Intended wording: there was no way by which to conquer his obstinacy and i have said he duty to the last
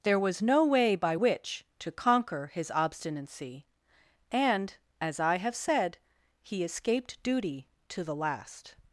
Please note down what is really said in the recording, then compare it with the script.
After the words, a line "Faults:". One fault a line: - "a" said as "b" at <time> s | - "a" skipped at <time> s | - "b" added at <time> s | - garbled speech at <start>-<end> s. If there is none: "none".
there was no way by which to conquer his obstinacy and as i have said he escaped duty to the last
Faults:
- "as" added at 5.0 s
- "escaped" added at 6.6 s